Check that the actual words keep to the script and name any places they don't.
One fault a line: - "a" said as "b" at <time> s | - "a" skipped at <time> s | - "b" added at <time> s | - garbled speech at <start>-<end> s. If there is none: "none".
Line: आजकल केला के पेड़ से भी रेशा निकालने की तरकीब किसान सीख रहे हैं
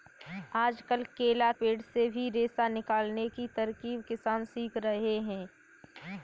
- "के" skipped at 1.5 s